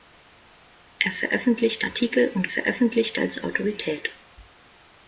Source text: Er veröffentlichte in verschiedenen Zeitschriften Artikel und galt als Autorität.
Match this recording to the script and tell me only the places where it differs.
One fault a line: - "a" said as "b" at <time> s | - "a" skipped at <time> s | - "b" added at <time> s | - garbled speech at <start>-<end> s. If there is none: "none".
- "in verschiedenen Zeitschriften" skipped at 1.9 s
- "galt" said as "veröffentlichte" at 2.5 s